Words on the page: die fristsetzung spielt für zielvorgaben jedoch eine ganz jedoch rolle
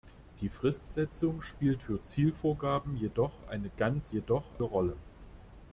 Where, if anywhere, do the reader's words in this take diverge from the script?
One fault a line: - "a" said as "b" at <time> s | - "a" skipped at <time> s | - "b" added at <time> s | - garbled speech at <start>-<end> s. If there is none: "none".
none